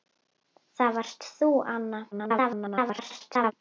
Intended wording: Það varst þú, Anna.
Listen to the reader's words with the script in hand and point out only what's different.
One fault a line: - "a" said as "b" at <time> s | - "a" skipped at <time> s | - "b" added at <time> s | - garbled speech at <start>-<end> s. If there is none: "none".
- garbled speech at 2.1-3.5 s